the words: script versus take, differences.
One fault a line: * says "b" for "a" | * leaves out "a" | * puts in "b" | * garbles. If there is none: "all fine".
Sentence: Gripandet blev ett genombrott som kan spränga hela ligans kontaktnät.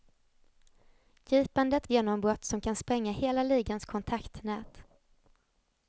* leaves out "blev ett"